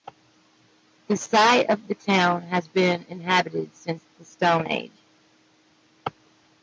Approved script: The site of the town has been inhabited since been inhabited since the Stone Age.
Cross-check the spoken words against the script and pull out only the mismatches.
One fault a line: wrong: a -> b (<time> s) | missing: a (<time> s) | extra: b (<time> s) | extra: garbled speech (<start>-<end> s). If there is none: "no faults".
missing: been inhabited since (4.0 s)